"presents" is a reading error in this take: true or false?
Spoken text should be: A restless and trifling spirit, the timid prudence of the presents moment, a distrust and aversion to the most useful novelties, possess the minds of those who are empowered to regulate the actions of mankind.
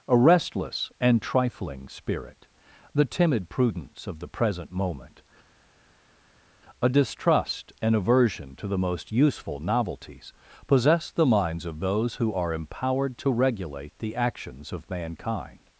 true